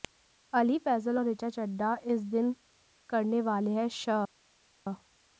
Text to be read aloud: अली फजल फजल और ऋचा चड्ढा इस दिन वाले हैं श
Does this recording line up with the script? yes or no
no